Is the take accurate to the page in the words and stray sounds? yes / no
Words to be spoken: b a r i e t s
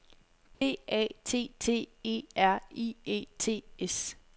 no